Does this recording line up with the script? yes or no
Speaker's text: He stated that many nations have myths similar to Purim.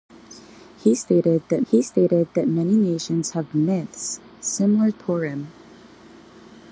no